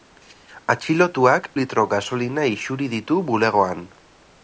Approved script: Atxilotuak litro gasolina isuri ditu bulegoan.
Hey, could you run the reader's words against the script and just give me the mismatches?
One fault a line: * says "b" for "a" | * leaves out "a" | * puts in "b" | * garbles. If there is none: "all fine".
all fine